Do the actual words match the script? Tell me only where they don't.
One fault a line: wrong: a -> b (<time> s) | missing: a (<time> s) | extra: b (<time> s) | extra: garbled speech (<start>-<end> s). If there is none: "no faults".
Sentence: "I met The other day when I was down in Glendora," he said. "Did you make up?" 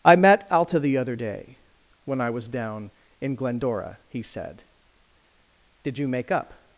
extra: Alta (0.5 s)